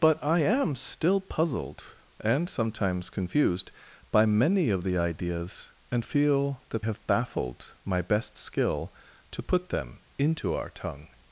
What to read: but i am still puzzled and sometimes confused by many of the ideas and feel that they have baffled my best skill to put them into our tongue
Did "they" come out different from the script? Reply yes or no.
yes